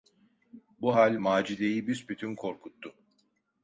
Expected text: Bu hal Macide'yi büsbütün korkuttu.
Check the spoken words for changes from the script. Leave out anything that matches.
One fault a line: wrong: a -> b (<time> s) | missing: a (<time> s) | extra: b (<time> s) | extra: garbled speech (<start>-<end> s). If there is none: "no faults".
no faults